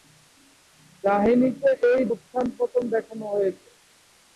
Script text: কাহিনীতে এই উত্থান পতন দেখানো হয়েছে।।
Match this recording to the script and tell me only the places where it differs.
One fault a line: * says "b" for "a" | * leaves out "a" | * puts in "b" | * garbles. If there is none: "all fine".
all fine